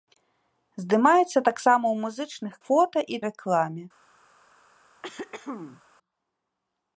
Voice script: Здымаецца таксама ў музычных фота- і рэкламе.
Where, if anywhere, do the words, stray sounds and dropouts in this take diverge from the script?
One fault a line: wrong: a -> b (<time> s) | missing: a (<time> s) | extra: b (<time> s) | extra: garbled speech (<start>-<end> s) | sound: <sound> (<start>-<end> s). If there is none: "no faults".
sound: throat clearing (5.0-5.8 s)